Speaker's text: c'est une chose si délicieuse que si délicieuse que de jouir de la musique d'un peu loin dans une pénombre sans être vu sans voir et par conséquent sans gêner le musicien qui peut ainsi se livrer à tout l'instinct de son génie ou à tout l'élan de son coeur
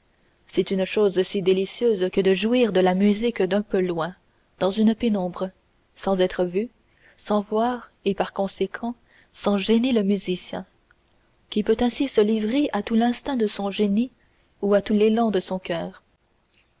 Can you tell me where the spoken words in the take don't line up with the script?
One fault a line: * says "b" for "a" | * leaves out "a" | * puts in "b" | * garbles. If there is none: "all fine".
* leaves out "si délicieuse que"